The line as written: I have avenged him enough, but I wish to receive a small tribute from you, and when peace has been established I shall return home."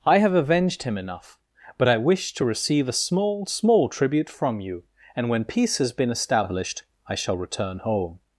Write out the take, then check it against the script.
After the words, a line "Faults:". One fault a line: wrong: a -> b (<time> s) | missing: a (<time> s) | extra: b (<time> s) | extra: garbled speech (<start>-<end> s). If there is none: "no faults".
I have avenged him enough, but I wish to receive a small small tribute from you, and when peace has been established I shall return home."
Faults:
extra: small (3.5 s)